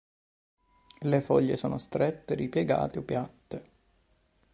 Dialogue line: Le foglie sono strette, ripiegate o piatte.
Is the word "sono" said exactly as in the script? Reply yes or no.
yes